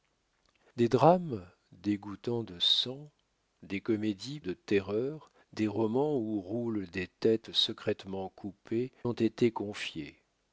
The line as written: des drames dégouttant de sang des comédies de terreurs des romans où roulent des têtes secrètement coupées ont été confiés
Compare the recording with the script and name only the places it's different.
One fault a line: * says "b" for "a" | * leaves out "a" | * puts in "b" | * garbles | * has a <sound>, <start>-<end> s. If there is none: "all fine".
all fine